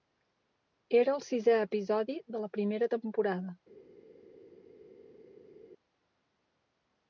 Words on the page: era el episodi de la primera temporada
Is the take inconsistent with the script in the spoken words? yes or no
yes